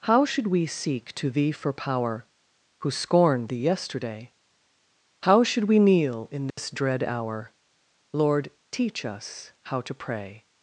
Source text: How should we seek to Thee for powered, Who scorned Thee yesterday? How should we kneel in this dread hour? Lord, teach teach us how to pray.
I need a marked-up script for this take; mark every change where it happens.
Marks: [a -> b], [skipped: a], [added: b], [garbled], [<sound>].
How should we seek to Thee for [powered, -> power] Who scorned Thee yesterday? How should we kneel in this [dropout] dread hour? Lord, teach [skipped: teach] us how to pray.